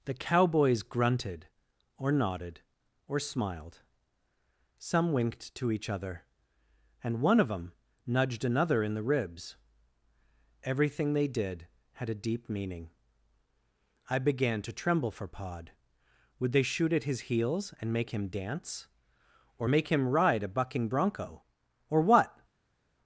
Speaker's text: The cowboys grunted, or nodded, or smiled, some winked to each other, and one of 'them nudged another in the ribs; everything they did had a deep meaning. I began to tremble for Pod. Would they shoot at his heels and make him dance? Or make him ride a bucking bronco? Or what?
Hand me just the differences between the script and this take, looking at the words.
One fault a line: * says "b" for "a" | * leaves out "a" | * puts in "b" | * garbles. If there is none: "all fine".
all fine